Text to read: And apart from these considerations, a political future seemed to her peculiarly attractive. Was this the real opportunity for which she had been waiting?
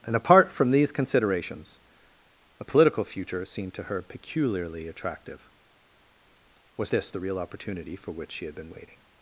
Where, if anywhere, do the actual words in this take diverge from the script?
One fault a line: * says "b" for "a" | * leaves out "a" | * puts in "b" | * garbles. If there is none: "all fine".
all fine